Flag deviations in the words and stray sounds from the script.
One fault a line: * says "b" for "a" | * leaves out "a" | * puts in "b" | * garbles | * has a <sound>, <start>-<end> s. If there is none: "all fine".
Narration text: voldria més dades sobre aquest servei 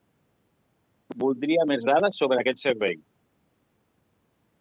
all fine